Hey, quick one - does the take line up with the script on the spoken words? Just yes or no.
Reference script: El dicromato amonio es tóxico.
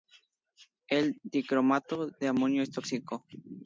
no